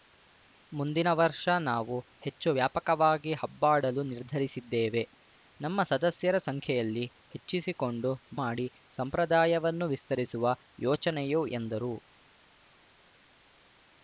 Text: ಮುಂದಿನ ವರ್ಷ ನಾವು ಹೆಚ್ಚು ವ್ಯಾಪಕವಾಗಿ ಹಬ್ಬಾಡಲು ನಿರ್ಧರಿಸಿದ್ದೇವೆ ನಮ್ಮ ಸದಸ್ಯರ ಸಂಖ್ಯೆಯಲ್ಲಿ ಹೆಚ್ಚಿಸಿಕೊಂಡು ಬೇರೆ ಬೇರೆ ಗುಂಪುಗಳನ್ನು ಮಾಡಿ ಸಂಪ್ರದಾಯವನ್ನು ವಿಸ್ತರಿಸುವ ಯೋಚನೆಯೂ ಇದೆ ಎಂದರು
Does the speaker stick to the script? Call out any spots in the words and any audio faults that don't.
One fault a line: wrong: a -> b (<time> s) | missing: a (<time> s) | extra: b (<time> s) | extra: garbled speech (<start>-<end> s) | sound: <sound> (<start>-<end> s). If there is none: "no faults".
missing: ಬೇರೆ ಬೇರೆ ಗುಂಪುಗಳನ್ನು (8.1 s)
missing: ಇದೆ (11.4 s)